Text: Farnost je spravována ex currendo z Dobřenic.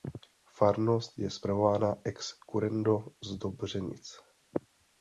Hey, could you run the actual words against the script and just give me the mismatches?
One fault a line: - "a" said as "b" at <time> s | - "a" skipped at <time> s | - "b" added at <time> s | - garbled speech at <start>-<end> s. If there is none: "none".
none